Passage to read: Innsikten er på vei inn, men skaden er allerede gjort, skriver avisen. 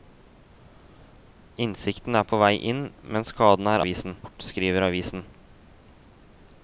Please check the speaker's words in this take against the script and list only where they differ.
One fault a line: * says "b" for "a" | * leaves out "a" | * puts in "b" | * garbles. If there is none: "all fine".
* says "avisen" for "allerede"